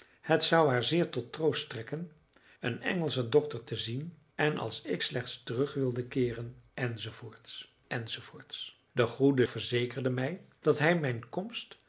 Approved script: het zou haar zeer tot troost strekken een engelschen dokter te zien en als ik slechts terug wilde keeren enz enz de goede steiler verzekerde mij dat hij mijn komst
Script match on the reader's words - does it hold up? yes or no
no